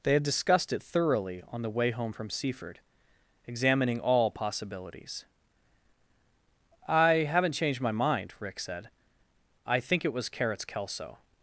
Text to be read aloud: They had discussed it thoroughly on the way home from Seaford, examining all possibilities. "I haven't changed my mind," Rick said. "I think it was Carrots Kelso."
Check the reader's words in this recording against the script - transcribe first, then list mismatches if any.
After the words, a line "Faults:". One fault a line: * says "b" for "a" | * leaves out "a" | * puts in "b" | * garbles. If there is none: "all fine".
They had discussed it thoroughly on the way home from Seaford, examining all possibilities. "I haven't changed my mind," Rick said. "I think it was Carrots Kelso."
Faults:
all fine